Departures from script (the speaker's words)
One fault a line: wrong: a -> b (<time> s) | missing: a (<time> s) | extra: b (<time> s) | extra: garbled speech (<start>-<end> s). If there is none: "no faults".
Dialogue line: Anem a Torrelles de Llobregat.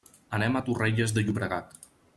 no faults